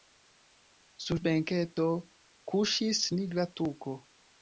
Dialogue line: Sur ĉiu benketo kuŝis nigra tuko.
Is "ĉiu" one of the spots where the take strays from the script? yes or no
yes